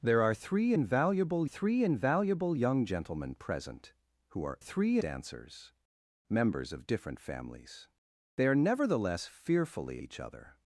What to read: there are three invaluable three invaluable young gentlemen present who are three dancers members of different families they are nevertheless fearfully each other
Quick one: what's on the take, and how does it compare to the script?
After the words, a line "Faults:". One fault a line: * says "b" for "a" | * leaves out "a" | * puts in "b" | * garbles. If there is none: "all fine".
there are three invaluable three invaluable young gentlemen present who are three dancers members of different families they are nevertheless fearfully each other
Faults:
all fine